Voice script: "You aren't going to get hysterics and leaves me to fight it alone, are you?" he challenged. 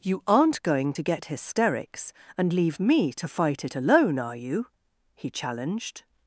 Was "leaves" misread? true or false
true